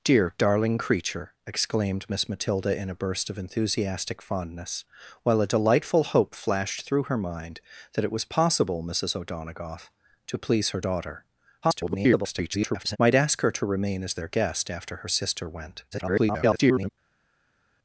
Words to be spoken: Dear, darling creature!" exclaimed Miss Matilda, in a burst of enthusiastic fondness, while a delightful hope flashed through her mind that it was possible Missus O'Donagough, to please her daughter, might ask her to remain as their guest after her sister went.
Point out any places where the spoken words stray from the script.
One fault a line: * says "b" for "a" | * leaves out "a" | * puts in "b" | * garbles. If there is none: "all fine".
* garbles
* garbles